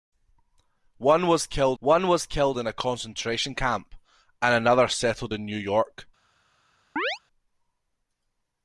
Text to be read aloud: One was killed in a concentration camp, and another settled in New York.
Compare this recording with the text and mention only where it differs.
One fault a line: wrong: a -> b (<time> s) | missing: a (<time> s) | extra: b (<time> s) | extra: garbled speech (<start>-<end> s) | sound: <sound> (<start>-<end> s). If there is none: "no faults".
extra: one was killed (1.8 s)
sound: chirp (7.0-7.2 s)